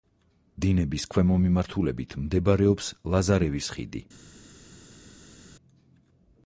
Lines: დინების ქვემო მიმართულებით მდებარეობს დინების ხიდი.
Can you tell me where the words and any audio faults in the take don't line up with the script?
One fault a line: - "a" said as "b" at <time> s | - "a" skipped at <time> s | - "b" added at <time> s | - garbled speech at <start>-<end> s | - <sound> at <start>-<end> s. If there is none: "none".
- "დინების" said as "ლაზარევის" at 3.2 s